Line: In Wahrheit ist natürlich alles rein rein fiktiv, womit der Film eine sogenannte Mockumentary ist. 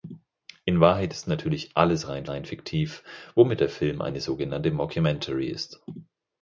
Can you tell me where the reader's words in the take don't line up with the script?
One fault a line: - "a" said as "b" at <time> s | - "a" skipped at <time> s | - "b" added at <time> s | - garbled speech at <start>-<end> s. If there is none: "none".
none